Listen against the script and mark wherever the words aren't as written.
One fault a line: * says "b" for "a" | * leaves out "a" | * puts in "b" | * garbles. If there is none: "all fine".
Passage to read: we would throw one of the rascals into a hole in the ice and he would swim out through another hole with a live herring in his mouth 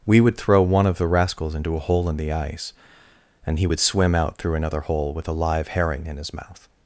all fine